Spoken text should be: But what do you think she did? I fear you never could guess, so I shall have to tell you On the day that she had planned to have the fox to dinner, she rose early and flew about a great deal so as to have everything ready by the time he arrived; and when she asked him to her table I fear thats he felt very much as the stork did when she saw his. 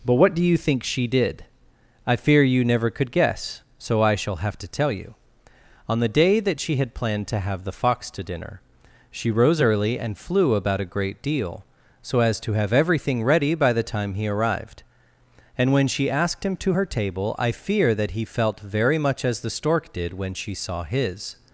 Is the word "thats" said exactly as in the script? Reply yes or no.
no